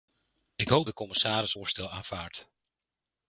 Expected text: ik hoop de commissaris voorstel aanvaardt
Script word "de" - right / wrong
right